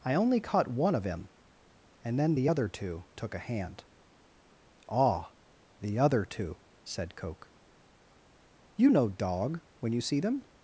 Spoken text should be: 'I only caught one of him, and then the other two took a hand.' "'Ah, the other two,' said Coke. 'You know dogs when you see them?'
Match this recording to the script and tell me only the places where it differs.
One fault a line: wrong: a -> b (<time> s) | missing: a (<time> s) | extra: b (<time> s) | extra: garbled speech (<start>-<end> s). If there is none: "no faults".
wrong: dogs -> dog (9.1 s)